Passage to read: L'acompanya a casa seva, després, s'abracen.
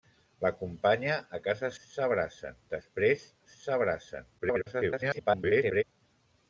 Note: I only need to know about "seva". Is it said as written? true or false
false